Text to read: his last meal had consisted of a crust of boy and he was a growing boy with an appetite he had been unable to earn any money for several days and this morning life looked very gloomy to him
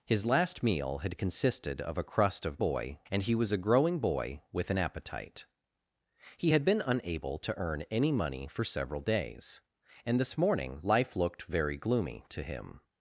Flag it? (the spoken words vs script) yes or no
no